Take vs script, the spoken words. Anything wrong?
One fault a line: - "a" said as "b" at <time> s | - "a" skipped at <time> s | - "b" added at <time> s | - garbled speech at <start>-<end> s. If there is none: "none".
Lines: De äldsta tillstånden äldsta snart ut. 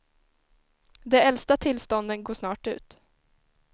- "äldsta" said as "går" at 2.2 s